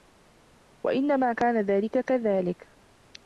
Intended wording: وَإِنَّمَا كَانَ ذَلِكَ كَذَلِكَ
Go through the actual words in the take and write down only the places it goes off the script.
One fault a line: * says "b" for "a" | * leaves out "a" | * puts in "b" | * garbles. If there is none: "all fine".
all fine